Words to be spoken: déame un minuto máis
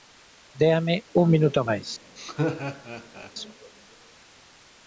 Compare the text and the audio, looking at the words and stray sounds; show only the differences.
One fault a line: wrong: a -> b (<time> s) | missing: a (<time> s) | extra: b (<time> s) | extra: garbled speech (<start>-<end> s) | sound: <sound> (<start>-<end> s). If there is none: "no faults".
sound: laugh (2.2-3.3 s)